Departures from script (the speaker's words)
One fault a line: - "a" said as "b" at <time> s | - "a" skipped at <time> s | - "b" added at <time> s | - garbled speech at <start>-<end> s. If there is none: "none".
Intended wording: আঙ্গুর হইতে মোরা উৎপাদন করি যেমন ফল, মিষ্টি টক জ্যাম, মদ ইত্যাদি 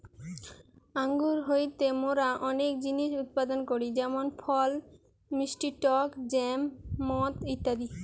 - "অনেক জিনিস" added at 2.5 s